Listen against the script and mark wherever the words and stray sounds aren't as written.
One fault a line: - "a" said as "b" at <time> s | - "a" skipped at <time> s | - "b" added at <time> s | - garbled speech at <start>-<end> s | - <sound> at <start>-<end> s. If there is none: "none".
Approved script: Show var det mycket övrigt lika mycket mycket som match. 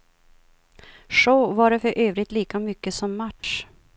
- "mycket" said as "för" at 1.8 s
- "mycket" skipped at 2.9 s
- dropout at 3.4-3.4 s